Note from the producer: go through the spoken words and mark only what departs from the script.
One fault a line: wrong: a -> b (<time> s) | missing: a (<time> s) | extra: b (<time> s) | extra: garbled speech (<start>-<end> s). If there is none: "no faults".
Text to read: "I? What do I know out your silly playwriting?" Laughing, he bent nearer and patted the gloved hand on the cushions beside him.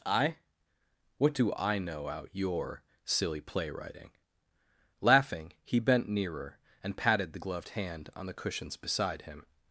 no faults